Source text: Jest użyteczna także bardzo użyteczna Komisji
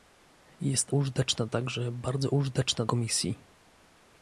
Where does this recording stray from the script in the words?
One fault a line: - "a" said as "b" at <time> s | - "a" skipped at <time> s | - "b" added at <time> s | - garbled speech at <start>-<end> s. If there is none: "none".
none